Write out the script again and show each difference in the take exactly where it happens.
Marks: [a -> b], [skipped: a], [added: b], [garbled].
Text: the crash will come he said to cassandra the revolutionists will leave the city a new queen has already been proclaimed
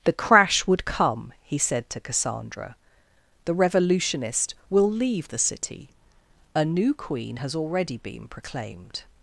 the crash [will -> would] come he said to cassandra the [revolutionists -> revolutionist] will leave the city a new queen has already been proclaimed